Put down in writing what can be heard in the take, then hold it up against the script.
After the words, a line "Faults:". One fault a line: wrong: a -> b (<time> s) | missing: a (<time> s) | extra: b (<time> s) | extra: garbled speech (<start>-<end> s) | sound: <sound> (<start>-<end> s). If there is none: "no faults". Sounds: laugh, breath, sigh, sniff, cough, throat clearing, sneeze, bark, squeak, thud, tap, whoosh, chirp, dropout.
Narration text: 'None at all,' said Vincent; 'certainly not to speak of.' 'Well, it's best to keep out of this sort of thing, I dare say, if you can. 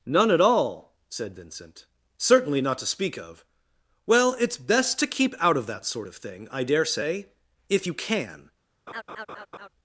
'None at all,' said Vincent; 'certainly not to speak of.' 'Well, it's best to keep out of that sort of thing, I dare say, if you can.
Faults:
wrong: this -> that (5.7 s)
sound: laugh (8.9-9.7 s)